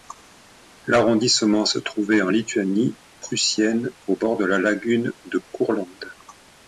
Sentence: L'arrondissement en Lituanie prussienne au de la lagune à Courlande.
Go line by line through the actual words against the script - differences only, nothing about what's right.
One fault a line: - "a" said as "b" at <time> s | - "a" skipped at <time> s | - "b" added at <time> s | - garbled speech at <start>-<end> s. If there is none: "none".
- "se trouvait" added at 1.6 s
- "bord" added at 4.1 s
- "à" said as "de" at 5.3 s